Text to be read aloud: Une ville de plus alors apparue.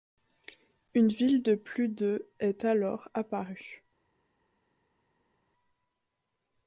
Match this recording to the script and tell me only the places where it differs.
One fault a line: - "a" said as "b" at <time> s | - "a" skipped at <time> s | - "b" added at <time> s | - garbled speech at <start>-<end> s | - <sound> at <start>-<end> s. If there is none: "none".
- "de est" added at 1.9 s